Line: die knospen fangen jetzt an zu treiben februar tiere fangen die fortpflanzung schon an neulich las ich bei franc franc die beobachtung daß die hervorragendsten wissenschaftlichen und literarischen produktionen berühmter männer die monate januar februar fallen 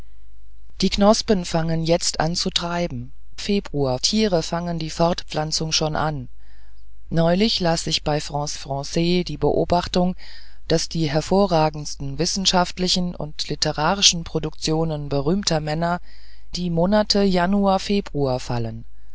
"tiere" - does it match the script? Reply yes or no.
yes